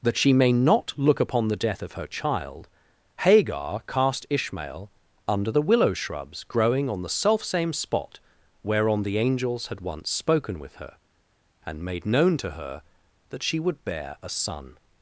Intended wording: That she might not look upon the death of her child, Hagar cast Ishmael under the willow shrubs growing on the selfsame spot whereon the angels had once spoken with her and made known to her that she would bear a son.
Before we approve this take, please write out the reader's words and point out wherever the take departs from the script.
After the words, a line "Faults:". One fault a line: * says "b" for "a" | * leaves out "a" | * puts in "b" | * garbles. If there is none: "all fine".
That she may not look upon the death of her child, Hagar cast Ishmael under the willow shrubs growing on the selfsame spot whereon the angels had once spoken with her and made known to her that she would bear a son.
Faults:
* says "may" for "might"